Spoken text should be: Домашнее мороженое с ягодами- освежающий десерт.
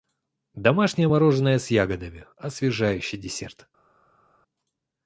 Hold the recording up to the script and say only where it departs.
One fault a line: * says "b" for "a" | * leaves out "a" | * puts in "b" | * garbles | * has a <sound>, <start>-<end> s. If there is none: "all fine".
all fine